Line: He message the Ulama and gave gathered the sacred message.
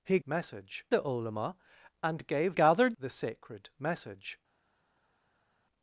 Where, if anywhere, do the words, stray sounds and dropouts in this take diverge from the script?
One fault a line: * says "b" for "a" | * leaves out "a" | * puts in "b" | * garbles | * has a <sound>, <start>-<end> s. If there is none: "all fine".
all fine